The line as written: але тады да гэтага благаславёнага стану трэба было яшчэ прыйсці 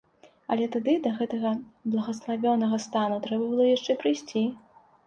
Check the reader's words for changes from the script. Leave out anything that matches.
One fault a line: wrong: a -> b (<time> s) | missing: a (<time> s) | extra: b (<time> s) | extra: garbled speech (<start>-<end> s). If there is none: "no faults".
no faults